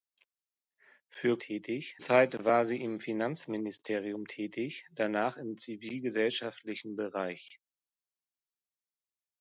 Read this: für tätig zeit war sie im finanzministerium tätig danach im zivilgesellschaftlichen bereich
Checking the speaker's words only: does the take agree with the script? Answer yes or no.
yes